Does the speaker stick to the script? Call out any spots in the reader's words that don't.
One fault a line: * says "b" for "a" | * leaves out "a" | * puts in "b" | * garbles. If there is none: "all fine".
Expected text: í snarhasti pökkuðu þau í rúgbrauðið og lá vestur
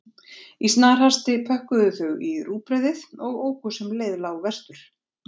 * puts in "óku sem leið"